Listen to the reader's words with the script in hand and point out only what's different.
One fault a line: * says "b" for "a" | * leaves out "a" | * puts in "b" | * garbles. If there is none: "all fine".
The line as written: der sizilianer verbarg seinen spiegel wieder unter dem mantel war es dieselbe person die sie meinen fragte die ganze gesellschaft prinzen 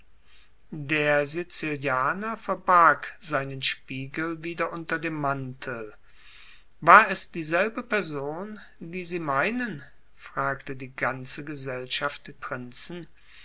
all fine